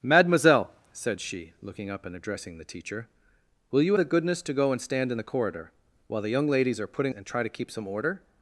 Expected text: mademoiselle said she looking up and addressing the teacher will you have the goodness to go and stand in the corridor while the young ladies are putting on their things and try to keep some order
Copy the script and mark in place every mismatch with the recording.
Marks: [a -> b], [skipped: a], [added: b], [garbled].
mademoiselle said she looking up and addressing the teacher will you [skipped: have] the goodness to go and stand in the corridor while the young ladies are putting [skipped: on their things] and try to keep some order